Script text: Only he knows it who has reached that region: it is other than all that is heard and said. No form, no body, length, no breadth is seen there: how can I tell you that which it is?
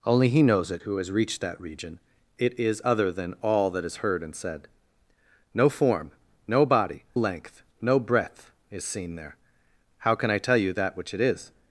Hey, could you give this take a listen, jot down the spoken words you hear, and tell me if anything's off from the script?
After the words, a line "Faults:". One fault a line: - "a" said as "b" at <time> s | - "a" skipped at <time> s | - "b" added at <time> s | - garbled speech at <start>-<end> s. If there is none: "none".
Only he knows it who has reached that region: it is other than all that is heard and said. No form, no body, length, no breadth is seen there: how can I tell you that which it is?
Faults:
none